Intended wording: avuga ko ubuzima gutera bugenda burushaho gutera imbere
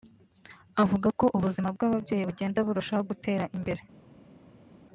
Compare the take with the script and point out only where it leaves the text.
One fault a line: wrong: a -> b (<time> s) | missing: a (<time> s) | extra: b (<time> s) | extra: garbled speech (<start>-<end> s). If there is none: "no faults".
wrong: gutera -> bw'ababyeyi (1.8 s)